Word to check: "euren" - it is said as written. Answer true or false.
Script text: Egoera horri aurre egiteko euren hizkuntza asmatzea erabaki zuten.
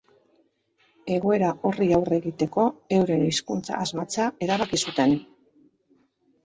true